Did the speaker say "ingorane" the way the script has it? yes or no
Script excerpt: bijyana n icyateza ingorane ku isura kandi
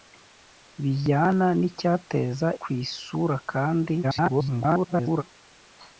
no